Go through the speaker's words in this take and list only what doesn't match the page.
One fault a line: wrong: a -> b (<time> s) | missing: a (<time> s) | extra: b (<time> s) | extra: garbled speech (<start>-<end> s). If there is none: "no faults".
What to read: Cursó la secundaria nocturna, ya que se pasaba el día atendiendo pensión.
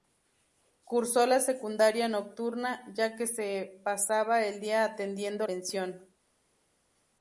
no faults